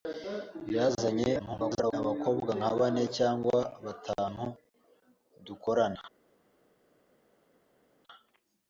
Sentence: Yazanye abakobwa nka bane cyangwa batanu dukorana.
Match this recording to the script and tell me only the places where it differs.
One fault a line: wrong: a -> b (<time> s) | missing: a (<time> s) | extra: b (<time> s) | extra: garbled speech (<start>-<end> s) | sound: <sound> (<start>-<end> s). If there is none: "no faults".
extra: garbled speech (1.4-1.9 s)